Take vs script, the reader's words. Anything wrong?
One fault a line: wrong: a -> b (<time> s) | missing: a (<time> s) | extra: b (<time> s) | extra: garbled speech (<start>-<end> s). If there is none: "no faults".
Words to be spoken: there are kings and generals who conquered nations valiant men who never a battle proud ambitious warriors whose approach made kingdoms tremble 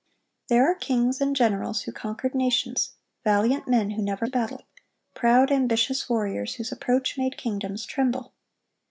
no faults